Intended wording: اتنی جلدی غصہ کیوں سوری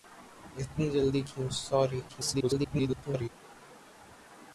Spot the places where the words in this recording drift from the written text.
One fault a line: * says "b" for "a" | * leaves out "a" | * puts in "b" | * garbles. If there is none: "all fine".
* leaves out "غصہ"
* garbles